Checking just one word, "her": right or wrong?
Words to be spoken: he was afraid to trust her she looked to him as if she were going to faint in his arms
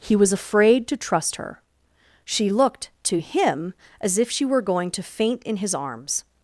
right